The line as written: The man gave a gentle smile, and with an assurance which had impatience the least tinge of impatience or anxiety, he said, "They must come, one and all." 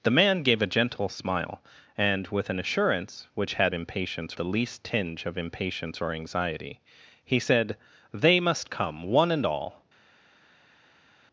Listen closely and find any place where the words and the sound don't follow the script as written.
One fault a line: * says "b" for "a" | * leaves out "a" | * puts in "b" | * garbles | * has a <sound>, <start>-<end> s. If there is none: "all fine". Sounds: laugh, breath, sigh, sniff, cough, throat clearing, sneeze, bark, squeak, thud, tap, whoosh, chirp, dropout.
all fine